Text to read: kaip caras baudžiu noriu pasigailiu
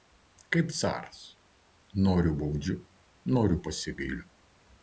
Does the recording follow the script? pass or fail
fail